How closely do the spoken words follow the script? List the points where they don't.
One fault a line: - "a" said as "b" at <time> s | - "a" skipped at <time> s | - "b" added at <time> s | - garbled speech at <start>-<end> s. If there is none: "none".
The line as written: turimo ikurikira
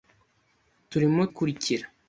none